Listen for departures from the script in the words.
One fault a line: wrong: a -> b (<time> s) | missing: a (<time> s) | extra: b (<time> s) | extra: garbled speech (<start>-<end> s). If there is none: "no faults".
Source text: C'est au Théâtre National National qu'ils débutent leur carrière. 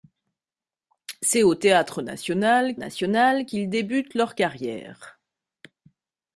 no faults